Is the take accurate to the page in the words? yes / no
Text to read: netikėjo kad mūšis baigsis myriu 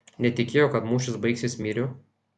yes